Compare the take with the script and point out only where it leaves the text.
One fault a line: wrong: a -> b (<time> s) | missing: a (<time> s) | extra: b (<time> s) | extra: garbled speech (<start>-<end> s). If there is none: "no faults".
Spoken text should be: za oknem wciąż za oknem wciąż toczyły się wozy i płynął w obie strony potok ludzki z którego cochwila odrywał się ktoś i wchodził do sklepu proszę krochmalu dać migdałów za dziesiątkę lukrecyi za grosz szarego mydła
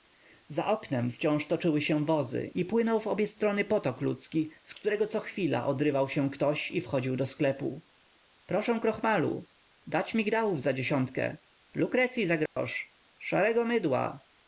missing: za oknem wciąż (1.4 s)